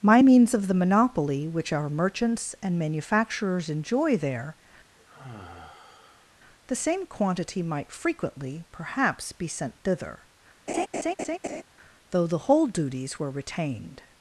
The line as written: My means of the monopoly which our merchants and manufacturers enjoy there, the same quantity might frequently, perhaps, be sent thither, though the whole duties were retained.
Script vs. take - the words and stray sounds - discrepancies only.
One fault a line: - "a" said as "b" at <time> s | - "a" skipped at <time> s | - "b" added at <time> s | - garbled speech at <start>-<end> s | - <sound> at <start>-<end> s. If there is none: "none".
- sigh at 5.0-6.4 s
- laugh at 10.7-11.6 s